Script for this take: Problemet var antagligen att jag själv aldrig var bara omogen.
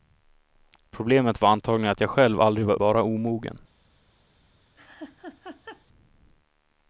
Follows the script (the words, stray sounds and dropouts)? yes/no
no